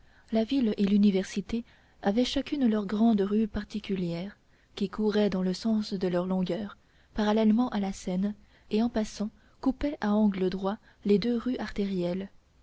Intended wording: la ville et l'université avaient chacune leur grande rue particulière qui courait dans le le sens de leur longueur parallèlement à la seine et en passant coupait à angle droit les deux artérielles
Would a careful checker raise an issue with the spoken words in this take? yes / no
yes